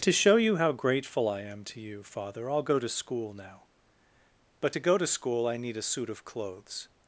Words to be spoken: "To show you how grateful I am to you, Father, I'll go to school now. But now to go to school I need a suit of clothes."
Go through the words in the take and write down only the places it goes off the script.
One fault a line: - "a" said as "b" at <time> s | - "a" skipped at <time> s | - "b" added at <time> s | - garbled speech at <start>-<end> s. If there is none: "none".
- "now" skipped at 4.7 s